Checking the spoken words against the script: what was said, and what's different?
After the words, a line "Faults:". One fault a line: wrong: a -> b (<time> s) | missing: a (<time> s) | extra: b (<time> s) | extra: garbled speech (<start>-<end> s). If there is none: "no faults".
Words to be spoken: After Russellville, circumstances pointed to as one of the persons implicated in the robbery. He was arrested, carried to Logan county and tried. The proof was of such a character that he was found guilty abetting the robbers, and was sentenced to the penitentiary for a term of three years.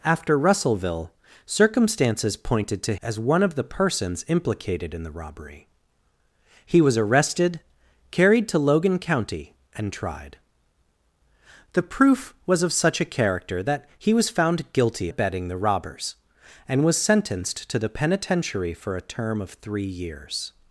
After Russellville, circumstances pointed to as one of the persons implicated in the robbery. He was arrested, carried to Logan county and tried. The proof was of such a character that he was found guilty abetting the robbers, and was sentenced to the penitentiary for a term of three years.
Faults:
no faults